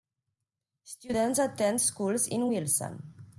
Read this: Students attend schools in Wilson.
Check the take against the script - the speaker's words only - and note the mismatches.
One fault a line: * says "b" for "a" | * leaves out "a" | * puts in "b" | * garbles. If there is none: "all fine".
all fine